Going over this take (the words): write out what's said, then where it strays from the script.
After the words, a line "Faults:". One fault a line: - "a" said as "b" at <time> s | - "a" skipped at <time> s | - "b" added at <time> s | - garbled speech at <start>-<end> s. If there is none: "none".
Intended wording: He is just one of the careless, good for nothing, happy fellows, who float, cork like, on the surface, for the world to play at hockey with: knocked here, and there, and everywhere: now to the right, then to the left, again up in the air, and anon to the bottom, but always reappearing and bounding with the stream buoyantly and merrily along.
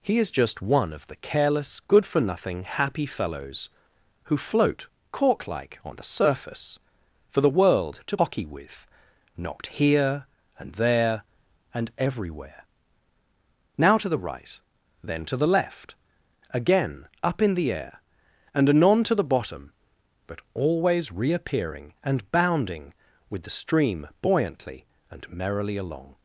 He is just one of the careless, good for nothing, happy fellows, who float, cork like, on the surface, for the world to hockey with: knocked here, and there, and everywhere: now to the right, then to the left, again up in the air, and anon to the bottom, but always reappearing and bounding with the stream buoyantly and merrily along.
Faults:
- "play at" skipped at 8.2 s